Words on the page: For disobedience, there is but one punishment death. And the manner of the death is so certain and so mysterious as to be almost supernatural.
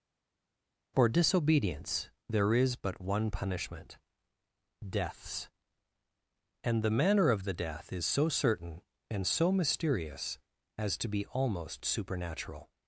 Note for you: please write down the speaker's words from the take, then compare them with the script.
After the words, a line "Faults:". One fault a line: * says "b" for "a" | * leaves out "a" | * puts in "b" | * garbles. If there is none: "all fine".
For disobedience, there is but one punishment deaths. And the manner of the death is so certain and so mysterious as to be almost supernatural.
Faults:
* says "deaths" for "death"